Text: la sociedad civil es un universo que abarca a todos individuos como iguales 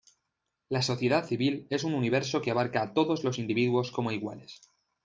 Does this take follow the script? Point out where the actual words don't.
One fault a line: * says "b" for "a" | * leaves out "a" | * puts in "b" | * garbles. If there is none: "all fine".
* puts in "los"